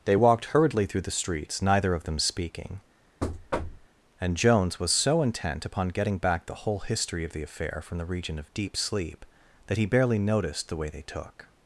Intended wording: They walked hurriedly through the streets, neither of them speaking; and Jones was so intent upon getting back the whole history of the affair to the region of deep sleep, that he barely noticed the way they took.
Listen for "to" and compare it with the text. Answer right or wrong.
wrong